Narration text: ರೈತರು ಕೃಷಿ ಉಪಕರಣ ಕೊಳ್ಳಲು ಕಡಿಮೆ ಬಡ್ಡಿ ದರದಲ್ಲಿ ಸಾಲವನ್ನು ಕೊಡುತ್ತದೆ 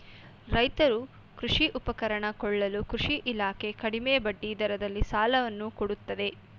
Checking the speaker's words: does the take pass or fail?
fail